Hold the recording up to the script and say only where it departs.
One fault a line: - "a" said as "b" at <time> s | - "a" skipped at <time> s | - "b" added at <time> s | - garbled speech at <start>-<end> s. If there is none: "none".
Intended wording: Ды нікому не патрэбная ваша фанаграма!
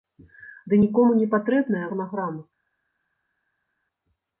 - "ваша" skipped at 1.8 s